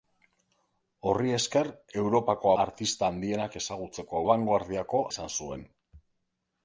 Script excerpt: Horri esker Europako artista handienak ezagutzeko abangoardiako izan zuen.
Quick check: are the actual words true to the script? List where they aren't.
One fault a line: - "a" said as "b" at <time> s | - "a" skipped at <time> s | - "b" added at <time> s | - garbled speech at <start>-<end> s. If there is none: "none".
none